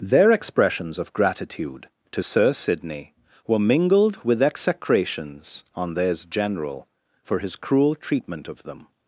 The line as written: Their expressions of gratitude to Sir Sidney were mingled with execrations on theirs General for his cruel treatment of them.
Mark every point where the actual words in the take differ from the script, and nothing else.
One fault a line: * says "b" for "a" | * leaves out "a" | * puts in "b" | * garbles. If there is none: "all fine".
all fine